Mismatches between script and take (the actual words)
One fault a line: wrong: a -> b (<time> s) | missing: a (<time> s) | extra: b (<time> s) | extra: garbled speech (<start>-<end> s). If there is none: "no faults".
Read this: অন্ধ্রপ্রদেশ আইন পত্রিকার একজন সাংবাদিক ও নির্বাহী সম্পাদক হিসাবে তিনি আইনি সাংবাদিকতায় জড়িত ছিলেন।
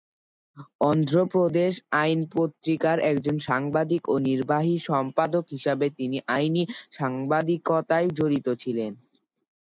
no faults